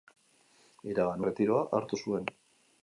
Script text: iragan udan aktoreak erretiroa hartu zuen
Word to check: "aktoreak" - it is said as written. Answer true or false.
false